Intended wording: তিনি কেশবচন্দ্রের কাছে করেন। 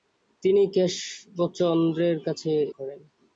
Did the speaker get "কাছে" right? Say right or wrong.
right